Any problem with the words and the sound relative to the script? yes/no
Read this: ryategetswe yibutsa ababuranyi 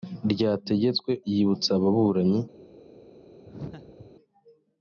yes